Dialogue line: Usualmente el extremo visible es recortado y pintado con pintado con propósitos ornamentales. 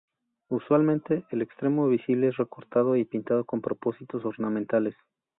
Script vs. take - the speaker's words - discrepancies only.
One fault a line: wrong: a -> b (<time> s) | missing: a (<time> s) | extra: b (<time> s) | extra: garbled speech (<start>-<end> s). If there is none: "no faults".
missing: pintado con (3.6 s)